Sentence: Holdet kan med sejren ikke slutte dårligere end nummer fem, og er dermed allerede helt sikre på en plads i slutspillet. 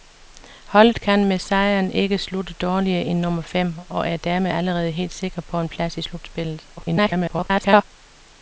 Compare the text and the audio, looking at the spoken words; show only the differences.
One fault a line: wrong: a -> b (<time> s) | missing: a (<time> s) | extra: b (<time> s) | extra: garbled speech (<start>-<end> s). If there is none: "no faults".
extra: garbled speech (6.8-7.8 s)